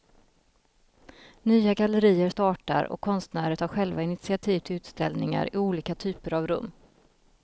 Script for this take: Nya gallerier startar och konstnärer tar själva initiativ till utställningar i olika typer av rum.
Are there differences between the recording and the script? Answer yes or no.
no